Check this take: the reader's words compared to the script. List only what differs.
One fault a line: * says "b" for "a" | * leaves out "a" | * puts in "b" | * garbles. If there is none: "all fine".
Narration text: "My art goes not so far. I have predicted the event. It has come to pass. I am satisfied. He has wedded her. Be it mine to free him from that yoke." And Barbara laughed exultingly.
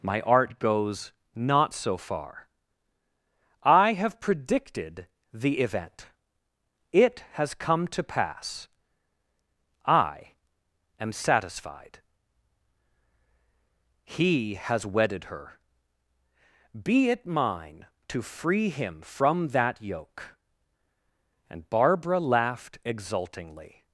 all fine